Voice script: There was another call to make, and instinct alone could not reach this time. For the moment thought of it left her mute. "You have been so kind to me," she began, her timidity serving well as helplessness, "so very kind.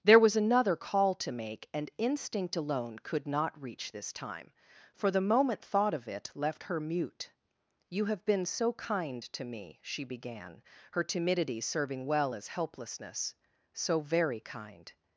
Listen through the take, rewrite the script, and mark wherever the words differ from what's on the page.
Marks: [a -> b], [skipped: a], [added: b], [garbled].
There was another call to make, and instinct alone could not reach this time. For the moment thought of it left her mute. "You have been so kind to me," she began, her timidity serving well as helplessness, "so very kind.